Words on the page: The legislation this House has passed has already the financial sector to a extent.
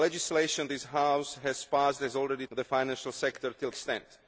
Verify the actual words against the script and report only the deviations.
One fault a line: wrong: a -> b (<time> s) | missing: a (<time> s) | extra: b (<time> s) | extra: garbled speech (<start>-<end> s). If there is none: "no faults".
no faults